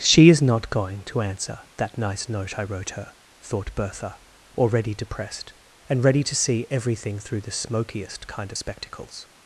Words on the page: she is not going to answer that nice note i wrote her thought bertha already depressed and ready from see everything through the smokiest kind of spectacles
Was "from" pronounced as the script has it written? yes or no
no